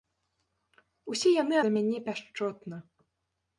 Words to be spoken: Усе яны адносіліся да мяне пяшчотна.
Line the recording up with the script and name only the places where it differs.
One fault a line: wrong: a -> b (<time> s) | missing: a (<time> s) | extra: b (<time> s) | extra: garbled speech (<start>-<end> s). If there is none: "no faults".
missing: адносіліся (1.6 s)